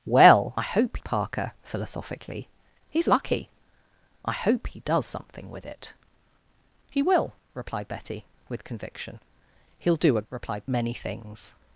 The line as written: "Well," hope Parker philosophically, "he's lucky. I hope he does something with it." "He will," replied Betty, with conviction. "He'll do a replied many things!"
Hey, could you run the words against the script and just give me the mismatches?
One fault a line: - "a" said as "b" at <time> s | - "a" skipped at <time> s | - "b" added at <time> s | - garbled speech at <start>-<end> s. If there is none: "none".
none